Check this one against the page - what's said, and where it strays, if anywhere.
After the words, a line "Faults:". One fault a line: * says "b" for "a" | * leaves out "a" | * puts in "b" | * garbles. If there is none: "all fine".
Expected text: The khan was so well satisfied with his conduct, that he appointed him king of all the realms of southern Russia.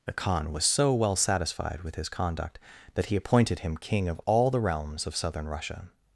The khan was so well satisfied with his conduct, that he appointed him king of all the realms of southern Russia.
Faults:
all fine